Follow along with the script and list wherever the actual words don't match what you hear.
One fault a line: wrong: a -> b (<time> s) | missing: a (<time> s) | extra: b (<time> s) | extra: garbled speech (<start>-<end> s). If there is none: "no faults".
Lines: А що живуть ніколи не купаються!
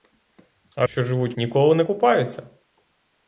no faults